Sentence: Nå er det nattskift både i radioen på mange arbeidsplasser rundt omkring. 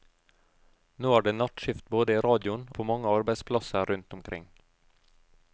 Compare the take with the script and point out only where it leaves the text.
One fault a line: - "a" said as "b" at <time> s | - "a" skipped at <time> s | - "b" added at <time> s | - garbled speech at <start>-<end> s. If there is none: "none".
none